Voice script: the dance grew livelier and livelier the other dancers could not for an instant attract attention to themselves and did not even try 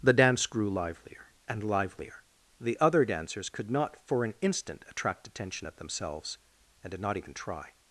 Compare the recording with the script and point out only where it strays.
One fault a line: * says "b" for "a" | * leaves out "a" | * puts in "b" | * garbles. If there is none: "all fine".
* says "at" for "to"